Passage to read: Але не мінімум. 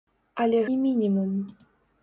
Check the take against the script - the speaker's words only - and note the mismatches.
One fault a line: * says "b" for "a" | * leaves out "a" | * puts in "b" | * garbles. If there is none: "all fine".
all fine